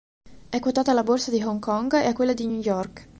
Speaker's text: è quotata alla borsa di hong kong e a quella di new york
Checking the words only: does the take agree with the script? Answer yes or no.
yes